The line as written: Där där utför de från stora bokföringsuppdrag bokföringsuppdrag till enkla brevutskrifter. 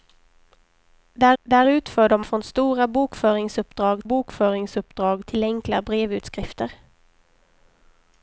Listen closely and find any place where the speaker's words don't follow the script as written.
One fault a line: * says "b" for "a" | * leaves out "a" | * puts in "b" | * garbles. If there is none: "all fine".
all fine